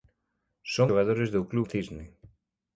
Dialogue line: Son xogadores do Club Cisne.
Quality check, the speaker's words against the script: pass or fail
pass